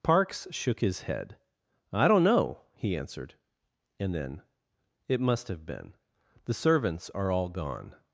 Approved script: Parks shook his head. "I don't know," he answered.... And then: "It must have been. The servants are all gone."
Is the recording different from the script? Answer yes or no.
no